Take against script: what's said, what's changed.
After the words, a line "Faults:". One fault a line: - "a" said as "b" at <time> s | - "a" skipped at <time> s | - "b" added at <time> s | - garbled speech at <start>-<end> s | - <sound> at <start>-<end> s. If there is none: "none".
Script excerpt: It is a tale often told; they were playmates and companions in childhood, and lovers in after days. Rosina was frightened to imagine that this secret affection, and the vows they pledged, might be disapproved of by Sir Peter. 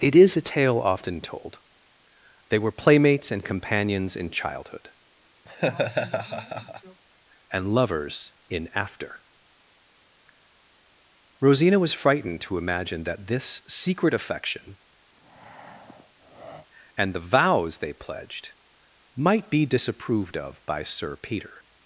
It is a tale often told; they were playmates and companions in childhood, and lovers in after. Rosina was frightened to imagine that this secret affection, and the vows they pledged, might be disapproved of by Sir Peter.
Faults:
- laugh at 5.5-7.0 s
- "days" skipped at 9.2 s
- breath at 15.1-16.7 s